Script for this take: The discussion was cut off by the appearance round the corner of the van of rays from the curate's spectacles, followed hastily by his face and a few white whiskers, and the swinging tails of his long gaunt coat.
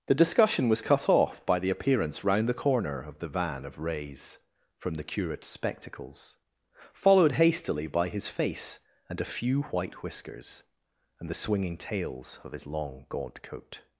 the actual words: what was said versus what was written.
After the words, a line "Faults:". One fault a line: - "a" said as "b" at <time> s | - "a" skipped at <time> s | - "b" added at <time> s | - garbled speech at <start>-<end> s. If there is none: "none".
The discussion was cut off by the appearance round the corner of the van of rays from the curate's spectacles, followed hastily by his face and a few white whiskers, and the swinging tails of his long gaunt coat.
Faults:
none